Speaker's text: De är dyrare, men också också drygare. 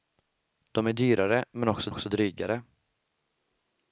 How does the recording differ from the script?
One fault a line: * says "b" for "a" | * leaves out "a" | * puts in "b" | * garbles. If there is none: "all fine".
all fine